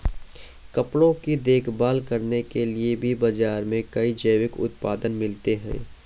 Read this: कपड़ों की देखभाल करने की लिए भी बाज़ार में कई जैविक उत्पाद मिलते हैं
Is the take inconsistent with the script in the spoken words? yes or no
yes